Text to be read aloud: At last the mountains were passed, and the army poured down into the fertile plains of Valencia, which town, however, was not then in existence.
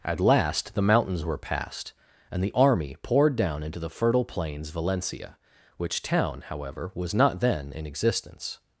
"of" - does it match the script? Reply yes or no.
no